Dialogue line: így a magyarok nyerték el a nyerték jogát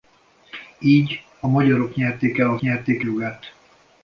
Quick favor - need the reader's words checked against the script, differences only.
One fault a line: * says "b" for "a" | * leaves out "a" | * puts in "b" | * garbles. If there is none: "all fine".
all fine